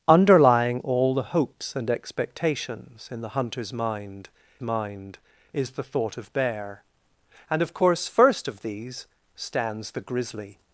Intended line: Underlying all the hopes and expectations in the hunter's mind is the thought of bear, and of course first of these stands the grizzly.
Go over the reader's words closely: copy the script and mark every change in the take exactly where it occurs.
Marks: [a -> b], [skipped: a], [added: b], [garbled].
Underlying all the hopes and expectations in the hunter's mind [added: mind] is the thought of bear, and of course first of these stands the grizzly.